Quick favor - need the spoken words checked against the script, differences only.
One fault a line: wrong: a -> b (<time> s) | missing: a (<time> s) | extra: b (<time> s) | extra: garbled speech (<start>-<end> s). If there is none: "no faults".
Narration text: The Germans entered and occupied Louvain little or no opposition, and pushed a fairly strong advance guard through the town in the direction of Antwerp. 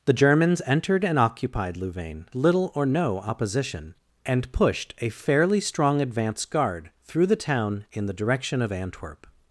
no faults